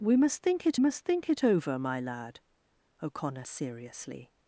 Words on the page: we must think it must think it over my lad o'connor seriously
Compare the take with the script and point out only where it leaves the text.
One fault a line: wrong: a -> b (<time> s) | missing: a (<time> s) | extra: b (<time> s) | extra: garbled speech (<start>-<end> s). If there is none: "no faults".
no faults